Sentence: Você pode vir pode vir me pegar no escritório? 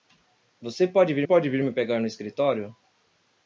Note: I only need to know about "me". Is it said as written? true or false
true